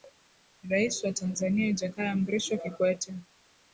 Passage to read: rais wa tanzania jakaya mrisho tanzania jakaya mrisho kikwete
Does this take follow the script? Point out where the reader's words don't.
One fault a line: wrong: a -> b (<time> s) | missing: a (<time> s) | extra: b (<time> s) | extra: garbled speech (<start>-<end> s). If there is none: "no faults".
missing: tanzania jakaya mrisho (2.6 s)